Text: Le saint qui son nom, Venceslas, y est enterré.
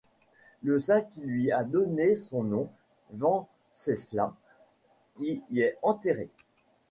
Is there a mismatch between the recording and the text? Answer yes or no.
yes